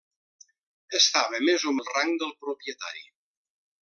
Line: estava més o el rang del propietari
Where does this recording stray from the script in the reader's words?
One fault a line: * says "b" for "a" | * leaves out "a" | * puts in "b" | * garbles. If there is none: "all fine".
all fine